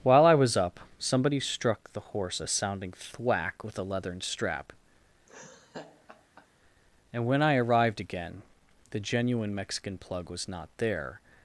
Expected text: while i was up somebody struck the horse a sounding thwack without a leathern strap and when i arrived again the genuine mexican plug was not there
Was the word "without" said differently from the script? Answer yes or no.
yes